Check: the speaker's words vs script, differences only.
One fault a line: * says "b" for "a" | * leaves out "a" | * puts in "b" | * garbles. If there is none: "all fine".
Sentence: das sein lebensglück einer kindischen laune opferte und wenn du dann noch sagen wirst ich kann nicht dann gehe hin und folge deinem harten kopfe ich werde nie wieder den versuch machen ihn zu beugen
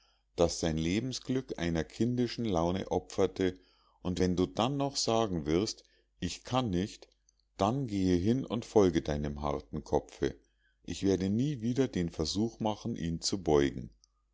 all fine